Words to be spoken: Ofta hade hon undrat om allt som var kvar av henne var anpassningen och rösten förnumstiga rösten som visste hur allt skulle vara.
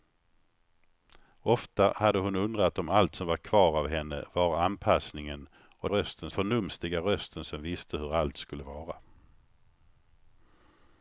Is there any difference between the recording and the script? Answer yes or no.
no